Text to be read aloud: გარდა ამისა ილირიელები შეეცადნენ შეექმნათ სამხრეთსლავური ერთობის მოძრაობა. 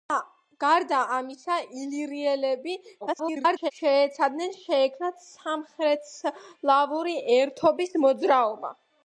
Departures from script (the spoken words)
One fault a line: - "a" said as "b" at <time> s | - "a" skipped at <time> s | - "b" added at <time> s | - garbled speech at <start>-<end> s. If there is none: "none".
- garbled speech at 3.0-3.7 s